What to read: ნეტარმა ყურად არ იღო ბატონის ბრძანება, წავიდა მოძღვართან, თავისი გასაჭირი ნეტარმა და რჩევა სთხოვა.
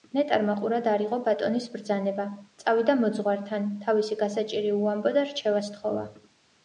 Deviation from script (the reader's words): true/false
true